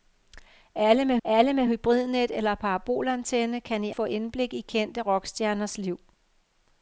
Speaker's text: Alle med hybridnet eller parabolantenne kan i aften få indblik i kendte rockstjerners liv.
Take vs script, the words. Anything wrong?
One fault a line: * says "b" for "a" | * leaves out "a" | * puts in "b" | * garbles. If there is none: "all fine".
* puts in "alle med"
* leaves out "aften"